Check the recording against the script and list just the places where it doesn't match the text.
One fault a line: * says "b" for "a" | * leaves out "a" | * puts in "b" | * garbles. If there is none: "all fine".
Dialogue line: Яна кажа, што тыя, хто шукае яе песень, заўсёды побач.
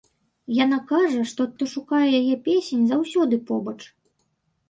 * leaves out "тыя"